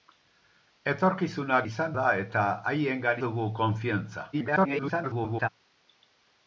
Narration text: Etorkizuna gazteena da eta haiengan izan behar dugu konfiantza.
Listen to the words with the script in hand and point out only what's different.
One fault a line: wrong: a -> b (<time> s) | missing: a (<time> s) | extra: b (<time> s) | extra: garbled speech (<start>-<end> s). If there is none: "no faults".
wrong: gazteena -> izan (1.7 s)
missing: izan behar (3.2 s)
extra: garbled speech (4.3-5.5 s)